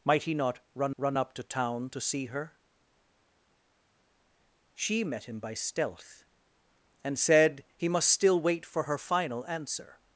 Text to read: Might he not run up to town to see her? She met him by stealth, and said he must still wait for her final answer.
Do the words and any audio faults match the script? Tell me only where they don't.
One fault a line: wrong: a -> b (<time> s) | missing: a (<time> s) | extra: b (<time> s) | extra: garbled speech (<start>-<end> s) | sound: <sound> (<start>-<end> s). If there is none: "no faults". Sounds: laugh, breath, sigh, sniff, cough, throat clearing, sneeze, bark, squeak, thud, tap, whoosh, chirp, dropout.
extra: run (1.0 s)